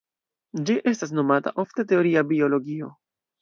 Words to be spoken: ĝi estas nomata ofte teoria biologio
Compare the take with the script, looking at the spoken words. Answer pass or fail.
pass